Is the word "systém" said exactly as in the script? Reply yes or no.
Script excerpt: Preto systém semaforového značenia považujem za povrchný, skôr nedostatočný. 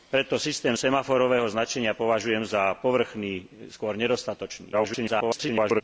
yes